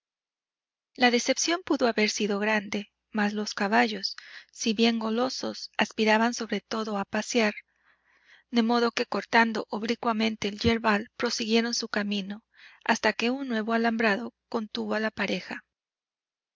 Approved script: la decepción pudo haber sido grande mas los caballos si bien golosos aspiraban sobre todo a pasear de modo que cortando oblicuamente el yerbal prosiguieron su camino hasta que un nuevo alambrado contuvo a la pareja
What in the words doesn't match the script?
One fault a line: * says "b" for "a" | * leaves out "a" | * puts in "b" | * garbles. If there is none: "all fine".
all fine